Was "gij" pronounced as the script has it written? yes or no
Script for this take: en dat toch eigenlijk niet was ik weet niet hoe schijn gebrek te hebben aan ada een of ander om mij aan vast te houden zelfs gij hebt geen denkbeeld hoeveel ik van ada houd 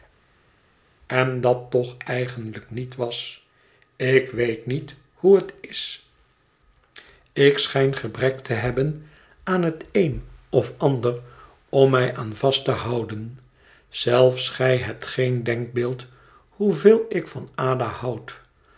yes